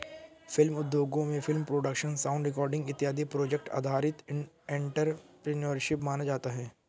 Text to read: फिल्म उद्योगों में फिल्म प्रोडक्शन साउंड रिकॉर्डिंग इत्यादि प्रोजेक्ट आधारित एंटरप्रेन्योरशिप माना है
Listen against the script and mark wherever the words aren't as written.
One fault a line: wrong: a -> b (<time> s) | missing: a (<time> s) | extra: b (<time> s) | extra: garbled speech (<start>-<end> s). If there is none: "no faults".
extra: जाता (6.2 s)